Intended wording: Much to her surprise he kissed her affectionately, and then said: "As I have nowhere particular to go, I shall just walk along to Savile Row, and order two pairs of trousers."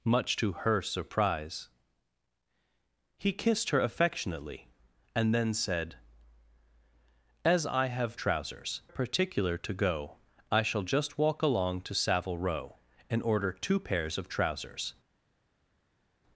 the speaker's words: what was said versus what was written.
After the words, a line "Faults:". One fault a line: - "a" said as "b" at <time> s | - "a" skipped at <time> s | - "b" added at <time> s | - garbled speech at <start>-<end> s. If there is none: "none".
Much to her surprise he kissed her affectionately, and then said: "As I have trousers particular to go, I shall just walk along to Savile Row, and order two pairs of trousers."
Faults:
- "nowhere" said as "trousers" at 8.2 s